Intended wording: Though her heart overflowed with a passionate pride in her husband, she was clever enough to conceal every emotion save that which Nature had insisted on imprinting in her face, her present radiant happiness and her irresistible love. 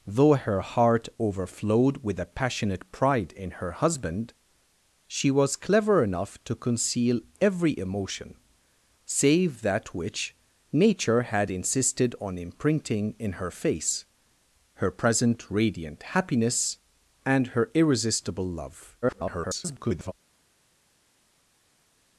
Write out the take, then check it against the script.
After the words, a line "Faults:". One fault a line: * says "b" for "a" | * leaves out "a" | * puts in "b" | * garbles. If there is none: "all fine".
Though her heart overflowed with a passionate pride in her husband, she was clever enough to conceal every emotion save that which Nature had insisted on imprinting in her face, her present radiant happiness and her irresistible love. [garbled]
Faults:
* garbles